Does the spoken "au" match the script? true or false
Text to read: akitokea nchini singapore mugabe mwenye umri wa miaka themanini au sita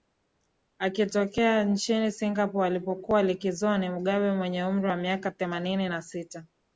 false